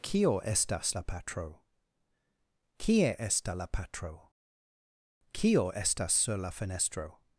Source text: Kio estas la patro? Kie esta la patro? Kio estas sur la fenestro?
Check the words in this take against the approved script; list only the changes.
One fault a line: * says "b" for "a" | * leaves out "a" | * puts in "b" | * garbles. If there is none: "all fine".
all fine